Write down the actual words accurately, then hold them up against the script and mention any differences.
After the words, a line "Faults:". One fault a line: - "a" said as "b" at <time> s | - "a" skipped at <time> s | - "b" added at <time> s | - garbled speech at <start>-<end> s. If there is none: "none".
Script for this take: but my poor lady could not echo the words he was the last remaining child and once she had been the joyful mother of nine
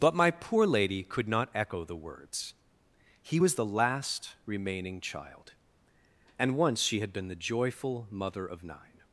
but my poor lady could not echo the words he was the last remaining child and once she had been the joyful mother of nine
Faults:
none